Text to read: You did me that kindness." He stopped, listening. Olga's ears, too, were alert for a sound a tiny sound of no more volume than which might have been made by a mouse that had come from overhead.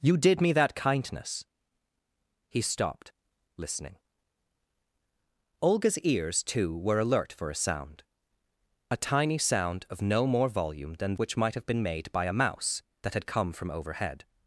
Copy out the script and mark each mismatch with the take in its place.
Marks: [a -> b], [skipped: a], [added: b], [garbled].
You did me that kindness." He stopped, listening. Olga's ears, too, were alert for a sound a tiny sound of no more volume than which might have been made by a mouse that had come from overhead.